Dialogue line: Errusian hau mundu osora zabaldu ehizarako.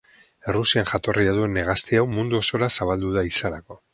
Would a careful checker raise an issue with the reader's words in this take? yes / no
yes